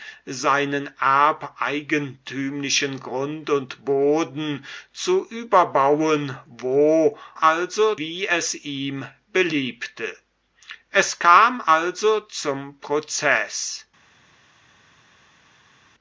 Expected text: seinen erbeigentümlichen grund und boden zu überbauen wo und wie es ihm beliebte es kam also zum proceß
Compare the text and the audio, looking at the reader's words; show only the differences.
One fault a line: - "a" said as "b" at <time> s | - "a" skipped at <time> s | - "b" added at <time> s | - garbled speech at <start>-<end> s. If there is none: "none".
- "und" said as "also" at 7.4 s